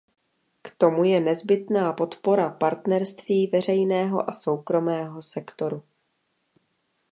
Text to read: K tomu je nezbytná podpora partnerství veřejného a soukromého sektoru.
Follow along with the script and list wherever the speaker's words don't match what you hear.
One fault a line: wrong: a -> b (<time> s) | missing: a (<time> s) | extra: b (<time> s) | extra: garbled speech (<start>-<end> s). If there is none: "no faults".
no faults